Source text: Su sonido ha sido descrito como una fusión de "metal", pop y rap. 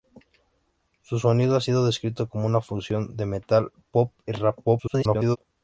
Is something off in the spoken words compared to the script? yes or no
yes